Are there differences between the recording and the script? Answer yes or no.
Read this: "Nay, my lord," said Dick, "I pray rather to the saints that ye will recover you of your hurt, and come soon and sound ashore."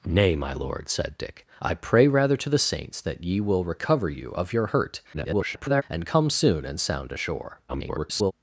yes